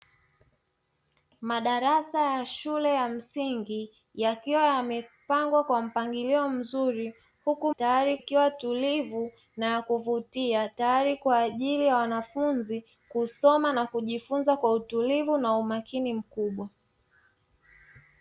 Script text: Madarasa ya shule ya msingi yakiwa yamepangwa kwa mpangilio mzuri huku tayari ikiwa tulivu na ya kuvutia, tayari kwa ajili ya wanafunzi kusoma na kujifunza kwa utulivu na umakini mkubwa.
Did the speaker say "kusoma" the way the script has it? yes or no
yes